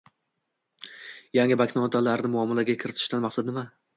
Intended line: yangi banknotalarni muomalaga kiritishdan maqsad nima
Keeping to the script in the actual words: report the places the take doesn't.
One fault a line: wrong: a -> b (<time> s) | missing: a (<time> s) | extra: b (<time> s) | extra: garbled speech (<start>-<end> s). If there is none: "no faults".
no faults